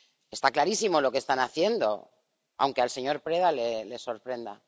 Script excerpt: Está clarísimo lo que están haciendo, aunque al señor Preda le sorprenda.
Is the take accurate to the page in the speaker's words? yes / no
yes